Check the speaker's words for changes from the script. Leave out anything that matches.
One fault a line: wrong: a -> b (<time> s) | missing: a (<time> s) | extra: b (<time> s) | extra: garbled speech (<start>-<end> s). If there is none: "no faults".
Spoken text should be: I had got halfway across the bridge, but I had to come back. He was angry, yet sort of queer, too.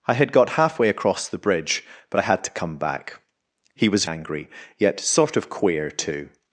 no faults